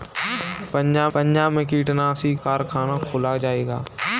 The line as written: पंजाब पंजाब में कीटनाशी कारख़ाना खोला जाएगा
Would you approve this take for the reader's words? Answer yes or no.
yes